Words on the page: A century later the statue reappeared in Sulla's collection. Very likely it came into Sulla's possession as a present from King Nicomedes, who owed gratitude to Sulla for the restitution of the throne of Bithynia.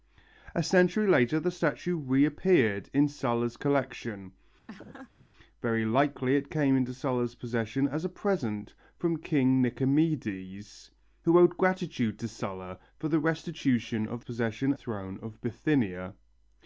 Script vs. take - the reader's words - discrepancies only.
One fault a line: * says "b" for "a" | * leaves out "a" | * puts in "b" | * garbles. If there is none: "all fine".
* says "possession" for "the"